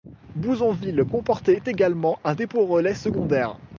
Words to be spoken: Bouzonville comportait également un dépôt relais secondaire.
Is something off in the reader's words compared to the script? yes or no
no